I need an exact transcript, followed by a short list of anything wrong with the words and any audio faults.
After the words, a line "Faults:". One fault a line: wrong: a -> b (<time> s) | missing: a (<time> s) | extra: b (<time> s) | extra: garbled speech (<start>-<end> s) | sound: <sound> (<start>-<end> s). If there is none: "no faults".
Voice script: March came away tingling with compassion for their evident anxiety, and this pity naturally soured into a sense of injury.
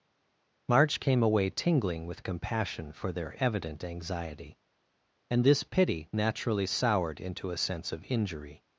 March came away tingling with compassion for their evident anxiety, and this pity naturally soured into a sense of injury.
Faults:
no faults